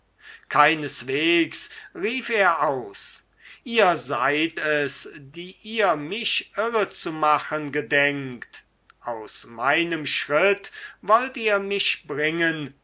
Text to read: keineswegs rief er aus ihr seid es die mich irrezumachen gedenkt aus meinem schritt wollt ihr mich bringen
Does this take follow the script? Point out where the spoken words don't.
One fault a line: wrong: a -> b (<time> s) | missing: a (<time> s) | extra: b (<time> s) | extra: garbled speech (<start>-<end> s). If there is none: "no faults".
extra: ihr (5.6 s)